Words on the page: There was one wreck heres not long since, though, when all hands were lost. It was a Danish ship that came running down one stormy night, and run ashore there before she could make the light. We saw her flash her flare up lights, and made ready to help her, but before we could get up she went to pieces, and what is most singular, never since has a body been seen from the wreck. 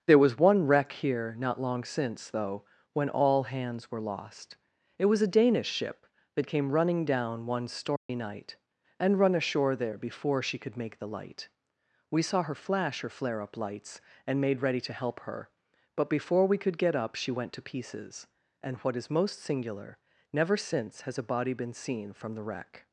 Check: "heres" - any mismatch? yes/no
yes